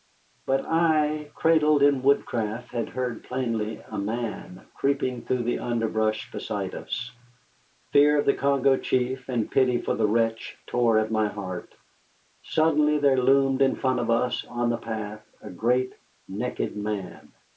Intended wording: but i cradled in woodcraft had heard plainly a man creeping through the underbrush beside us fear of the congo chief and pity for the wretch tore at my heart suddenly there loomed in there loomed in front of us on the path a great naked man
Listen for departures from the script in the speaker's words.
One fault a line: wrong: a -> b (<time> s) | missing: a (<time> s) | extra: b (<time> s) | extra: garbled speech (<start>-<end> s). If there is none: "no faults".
missing: there loomed in (13.8 s)